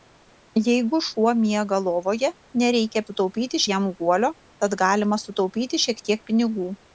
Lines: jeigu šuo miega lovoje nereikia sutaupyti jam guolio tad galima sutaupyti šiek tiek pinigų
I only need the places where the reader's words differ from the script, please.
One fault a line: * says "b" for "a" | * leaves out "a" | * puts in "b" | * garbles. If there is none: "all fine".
all fine